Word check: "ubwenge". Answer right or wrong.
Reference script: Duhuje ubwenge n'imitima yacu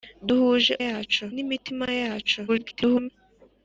wrong